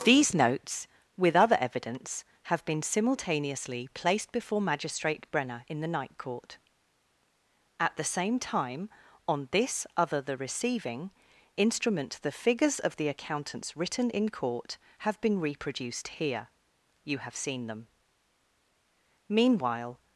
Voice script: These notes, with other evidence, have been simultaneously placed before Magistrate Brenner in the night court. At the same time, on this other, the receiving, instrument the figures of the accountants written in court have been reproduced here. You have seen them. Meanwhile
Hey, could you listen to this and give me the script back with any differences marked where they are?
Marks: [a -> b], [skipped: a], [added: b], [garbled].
These notes, with other evidence, have been simultaneously placed before Magistrate Brenner in the night court. At the same time, on this other, the receiving, instrument the figures of the accountants written in court have been reproduced here. You have seen them. Meanwhile